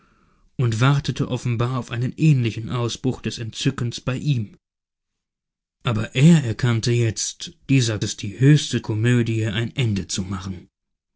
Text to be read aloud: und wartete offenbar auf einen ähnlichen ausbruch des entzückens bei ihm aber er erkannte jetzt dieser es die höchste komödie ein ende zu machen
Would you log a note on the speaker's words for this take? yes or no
no